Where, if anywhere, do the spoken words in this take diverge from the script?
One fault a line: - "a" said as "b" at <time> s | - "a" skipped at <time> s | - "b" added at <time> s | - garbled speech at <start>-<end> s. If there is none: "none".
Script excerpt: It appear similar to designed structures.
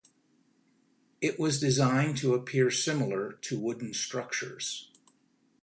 - "was designed to" added at 1.4 s
- "designed" said as "wooden" at 3.5 s